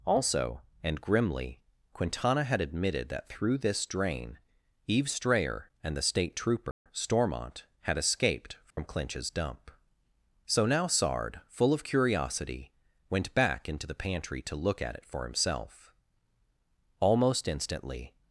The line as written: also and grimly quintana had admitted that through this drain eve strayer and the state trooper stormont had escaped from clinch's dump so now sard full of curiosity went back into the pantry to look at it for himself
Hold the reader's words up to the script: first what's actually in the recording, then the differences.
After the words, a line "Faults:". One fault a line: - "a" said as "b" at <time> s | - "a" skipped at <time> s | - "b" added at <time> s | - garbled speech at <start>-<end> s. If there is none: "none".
also and grimly quintana had admitted that through this drain eve strayer and the state trooper stormont had escaped from clinch's dump so now sard full of curiosity went back into the pantry to look at it for himself almost instantly
Faults:
- "almost instantly" added at 17.0 s